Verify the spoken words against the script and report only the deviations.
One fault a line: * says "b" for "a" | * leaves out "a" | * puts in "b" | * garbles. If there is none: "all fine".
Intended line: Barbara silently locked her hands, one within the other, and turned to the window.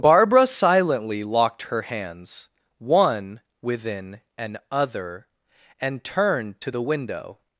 * says "an" for "the"